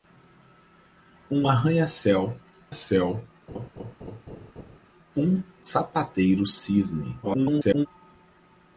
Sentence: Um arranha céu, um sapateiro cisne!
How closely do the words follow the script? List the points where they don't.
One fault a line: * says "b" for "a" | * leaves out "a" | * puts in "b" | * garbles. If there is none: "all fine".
* puts in "céu"
* garbles